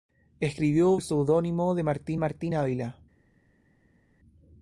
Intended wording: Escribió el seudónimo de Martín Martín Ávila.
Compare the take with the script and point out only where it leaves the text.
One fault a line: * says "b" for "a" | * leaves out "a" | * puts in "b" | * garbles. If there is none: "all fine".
all fine